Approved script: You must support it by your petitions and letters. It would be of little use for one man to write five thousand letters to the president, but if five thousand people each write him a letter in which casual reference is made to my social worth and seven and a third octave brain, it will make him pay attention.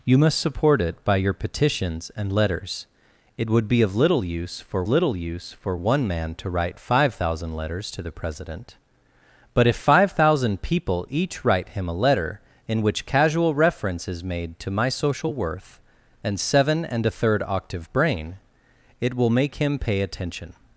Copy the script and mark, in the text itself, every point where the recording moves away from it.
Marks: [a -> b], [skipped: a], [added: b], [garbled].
You must support it by your petitions and letters. It would be of little use for [added: little use for] one man to write five thousand letters to the president, but if five thousand people each write him a letter in which casual reference is made to my social worth and seven and a third octave brain, it will make him pay attention.